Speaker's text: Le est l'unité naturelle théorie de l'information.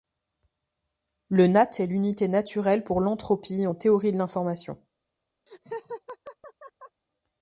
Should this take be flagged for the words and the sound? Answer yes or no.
yes